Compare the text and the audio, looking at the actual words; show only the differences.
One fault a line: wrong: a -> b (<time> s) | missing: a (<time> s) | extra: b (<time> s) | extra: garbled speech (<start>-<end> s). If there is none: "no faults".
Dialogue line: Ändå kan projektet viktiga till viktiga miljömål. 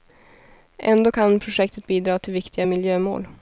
wrong: viktiga -> bidra (1.9 s)